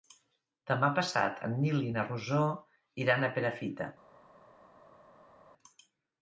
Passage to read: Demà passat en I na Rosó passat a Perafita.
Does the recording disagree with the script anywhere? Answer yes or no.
yes